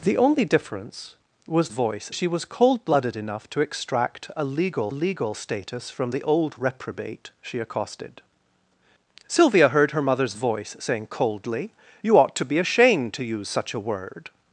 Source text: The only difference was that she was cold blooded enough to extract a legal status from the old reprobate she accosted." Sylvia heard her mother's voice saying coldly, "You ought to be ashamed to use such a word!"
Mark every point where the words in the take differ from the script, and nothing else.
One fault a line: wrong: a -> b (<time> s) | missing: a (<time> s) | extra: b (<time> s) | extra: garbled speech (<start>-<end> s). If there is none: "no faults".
wrong: that -> voice (1.7 s)
extra: legal (4.9 s)